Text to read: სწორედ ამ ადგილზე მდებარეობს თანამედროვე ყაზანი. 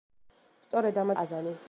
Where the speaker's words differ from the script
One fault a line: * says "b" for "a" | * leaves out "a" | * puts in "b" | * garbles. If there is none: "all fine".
* leaves out "ადგილზე მდებარეობს თანამედროვე"